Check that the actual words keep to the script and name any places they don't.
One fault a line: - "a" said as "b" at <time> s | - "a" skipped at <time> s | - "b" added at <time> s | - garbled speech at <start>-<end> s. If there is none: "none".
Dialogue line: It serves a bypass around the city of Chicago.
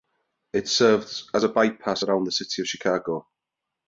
- "as" added at 1.3 s